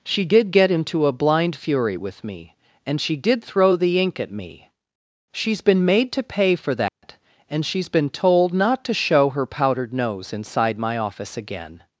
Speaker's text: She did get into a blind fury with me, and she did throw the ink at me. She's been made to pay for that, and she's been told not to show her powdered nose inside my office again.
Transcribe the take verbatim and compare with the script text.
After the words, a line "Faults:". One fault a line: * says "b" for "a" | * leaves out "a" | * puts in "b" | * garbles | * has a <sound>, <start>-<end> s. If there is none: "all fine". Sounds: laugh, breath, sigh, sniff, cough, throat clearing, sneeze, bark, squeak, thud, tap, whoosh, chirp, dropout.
She did get into a blind fury with me, and she did throw the ink at me. She's been made to pay for that, and she's been told not to show her powdered nose inside my office again.
Faults:
* has a dropout, 6.9-7.0 s